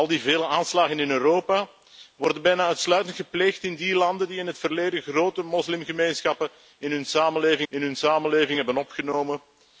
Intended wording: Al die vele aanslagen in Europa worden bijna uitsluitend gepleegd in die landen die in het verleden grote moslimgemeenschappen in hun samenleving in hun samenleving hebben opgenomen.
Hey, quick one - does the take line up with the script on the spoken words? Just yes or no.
yes